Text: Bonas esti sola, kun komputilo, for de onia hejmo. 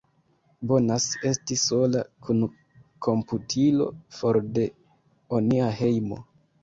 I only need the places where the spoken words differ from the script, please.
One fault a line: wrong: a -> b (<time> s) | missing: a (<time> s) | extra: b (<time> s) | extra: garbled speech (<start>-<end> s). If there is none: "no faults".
no faults